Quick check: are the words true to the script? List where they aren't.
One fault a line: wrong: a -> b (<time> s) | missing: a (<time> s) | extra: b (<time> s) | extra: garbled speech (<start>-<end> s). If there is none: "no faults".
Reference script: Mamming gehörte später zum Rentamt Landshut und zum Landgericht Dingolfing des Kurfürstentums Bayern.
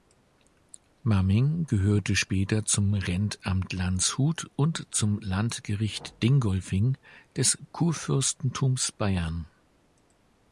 no faults